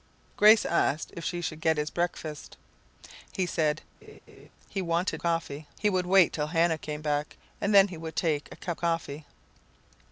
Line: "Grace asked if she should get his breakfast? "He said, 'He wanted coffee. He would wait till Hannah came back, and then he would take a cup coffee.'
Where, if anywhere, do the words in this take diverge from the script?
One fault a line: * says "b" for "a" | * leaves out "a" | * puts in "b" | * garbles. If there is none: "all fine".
all fine